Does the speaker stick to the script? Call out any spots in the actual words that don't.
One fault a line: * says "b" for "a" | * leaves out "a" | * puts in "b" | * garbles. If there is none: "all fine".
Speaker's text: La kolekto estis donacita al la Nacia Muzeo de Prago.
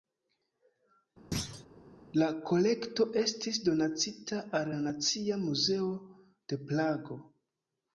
all fine